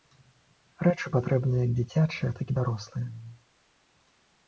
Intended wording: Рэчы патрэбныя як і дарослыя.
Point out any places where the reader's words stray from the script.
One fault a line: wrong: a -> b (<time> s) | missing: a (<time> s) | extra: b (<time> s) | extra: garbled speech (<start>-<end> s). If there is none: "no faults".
extra: дзіцячыя так (1.8 s)